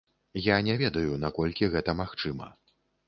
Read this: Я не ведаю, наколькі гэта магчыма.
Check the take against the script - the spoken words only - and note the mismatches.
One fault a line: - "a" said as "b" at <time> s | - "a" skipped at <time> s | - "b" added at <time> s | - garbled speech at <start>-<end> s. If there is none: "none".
none